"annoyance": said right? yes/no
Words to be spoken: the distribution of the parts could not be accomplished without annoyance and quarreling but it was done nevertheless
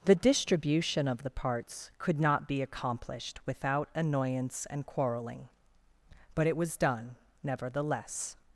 yes